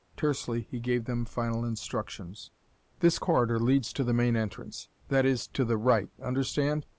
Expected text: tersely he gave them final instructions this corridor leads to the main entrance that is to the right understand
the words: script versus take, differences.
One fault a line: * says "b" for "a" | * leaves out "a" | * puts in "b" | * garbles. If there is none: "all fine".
all fine